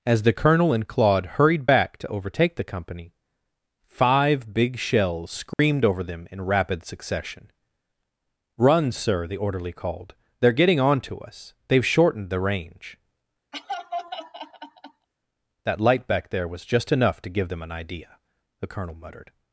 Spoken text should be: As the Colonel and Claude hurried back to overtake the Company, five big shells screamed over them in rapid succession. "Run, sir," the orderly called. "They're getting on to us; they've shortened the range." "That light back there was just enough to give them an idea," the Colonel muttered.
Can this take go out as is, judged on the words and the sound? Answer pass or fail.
fail